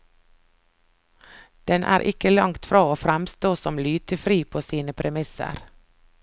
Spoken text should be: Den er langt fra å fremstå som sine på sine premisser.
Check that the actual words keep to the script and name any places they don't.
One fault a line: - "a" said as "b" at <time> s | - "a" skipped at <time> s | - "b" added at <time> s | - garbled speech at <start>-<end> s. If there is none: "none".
- "ikke" added at 2.1 s
- "sine" said as "lytefri" at 3.9 s